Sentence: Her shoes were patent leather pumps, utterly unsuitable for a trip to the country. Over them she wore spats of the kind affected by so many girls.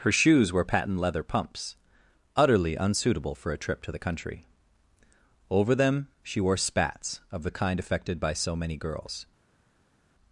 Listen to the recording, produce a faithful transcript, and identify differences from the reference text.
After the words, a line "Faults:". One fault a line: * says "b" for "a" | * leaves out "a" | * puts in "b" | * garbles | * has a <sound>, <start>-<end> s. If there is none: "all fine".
Her shoes were patent leather pumps, utterly unsuitable for a trip to the country. Over them she wore spats of the kind affected by so many girls.
Faults:
all fine